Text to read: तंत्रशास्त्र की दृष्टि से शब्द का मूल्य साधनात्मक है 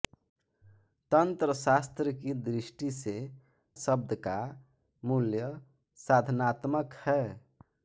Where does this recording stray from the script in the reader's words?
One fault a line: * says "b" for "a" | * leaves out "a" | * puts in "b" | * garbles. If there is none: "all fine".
all fine